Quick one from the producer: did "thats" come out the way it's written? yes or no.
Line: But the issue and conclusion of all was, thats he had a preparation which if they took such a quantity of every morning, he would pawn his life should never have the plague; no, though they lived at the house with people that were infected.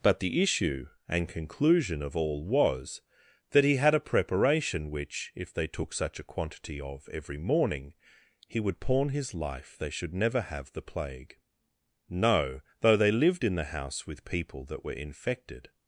no